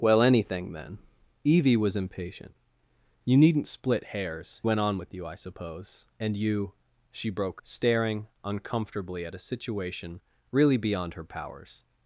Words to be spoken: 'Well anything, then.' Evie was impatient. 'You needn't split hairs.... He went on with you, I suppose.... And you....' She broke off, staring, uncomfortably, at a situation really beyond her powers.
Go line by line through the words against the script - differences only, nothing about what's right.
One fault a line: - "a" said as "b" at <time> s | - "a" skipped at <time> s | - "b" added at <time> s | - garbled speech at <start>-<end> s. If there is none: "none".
- "He" skipped at 4.6 s
- "off" skipped at 7.6 s